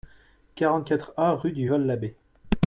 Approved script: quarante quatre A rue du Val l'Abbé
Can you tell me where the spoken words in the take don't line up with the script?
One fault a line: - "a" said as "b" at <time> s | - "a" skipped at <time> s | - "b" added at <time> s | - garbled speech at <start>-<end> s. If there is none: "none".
none